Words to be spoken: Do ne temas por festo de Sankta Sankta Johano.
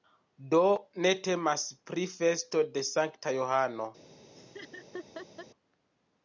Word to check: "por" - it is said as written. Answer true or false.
false